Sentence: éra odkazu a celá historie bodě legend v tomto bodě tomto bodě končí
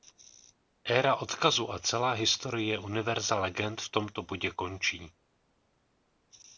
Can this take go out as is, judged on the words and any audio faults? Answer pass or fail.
fail